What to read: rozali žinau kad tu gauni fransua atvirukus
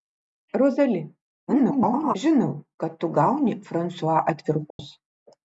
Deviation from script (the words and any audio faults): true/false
true